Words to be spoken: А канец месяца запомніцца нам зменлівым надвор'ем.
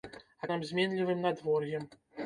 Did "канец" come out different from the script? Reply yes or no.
yes